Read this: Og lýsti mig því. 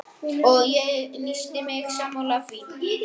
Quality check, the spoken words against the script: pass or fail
fail